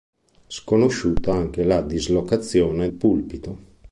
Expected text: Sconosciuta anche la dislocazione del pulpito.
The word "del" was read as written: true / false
false